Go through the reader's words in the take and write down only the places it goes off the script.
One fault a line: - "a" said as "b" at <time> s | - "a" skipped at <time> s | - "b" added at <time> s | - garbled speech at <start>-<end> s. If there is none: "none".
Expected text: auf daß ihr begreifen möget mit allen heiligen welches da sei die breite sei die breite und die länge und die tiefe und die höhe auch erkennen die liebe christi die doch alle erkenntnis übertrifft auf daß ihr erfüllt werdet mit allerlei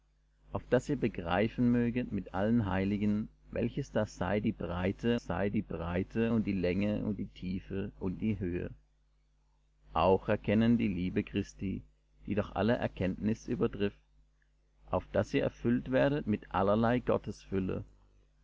none